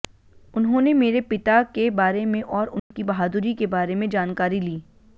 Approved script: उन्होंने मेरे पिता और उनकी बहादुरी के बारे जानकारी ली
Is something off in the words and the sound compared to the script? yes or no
yes